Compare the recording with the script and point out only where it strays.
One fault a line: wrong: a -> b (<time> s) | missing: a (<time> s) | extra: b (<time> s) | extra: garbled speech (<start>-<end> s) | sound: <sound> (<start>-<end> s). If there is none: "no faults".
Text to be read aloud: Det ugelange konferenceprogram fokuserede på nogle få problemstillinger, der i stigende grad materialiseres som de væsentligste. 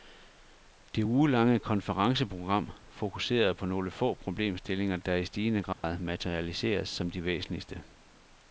sound: dropout (5.7-5.8 s)